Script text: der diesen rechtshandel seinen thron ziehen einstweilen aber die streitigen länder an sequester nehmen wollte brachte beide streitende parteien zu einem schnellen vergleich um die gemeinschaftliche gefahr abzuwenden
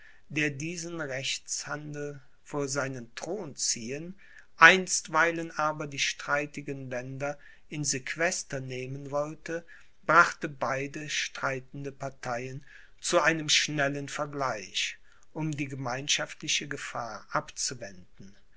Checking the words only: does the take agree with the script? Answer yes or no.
no